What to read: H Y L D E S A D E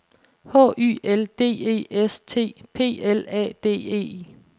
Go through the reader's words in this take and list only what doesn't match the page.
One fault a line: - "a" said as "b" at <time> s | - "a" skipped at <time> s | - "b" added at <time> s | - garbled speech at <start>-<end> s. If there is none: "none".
- "T P L" added at 2.2 s